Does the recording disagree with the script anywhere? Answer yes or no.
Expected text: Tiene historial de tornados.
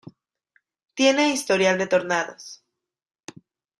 no